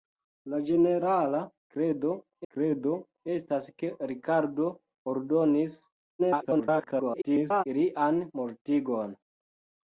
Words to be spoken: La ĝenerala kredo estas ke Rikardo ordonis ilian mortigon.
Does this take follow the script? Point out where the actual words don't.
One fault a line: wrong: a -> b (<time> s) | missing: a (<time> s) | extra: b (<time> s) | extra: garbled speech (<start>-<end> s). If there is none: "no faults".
extra: kredo (2.5 s)
extra: garbled speech (6.2-7.6 s)